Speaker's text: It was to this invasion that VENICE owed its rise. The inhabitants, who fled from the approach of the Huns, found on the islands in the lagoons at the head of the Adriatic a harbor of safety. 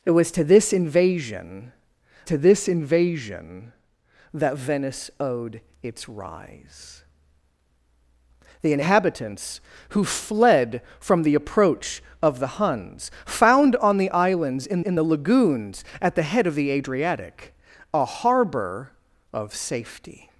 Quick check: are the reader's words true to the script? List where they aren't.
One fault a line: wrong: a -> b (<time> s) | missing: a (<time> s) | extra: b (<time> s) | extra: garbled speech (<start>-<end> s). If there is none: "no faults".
extra: to this invasion (2.2 s)
extra: in (14.8 s)